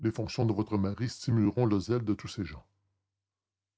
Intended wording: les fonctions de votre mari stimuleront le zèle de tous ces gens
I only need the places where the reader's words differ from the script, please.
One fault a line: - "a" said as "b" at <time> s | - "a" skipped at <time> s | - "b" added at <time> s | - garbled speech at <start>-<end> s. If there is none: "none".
none